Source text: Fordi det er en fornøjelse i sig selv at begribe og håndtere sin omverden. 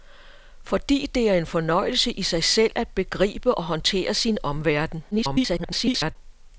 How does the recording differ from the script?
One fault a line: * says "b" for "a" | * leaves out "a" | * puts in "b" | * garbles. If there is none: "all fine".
* garbles